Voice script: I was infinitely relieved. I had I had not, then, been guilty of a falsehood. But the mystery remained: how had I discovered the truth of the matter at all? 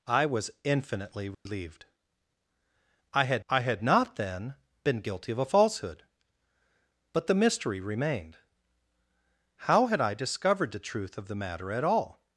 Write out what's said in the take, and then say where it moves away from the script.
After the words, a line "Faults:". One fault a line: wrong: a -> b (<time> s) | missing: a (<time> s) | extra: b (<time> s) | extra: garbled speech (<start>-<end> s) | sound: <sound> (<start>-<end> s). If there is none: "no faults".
I was infinitely relieved. I had I had not, then, been guilty of a falsehood. But the mystery remained: how had I discovered the truth of the matter at all?
Faults:
sound: dropout (1.3-1.5 s)